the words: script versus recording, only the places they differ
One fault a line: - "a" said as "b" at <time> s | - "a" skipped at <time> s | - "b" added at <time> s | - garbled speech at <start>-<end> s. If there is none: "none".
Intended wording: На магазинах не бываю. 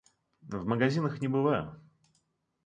- "На" said as "В" at 0.4 s